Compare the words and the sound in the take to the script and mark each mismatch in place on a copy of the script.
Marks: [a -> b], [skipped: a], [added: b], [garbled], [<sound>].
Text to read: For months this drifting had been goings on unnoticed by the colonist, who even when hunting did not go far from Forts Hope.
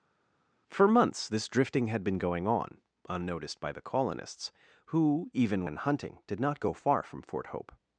For months this drifting had been [goings -> going] on unnoticed by the [colonist, -> colonists] who even when hunting did not go far from [Forts -> Fort] Hope.